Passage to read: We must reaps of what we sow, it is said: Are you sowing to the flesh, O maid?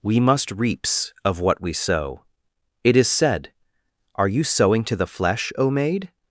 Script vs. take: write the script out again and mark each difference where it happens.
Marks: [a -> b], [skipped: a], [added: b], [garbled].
We must reaps of what we sow, it is said: Are you sowing to the flesh, O maid?